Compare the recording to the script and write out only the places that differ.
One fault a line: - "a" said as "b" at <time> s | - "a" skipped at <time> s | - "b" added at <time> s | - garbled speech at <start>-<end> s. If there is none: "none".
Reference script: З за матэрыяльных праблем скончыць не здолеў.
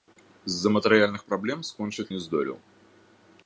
none